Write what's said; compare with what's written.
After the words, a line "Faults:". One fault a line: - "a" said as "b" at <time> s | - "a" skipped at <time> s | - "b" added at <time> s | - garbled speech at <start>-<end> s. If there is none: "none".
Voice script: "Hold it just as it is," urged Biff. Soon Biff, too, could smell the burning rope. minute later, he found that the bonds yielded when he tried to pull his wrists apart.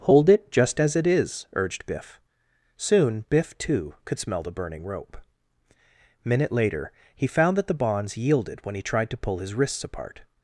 "Hold it just as it is," urged Biff. Soon Biff, too, could smell the burning rope. minute later, he found that the bonds yielded when he tried to pull his wrists apart.
Faults:
none